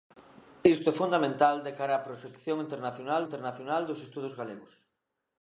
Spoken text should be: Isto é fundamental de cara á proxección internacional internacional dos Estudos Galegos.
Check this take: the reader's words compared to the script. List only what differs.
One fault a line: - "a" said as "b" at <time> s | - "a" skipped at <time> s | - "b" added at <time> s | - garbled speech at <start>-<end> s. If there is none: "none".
none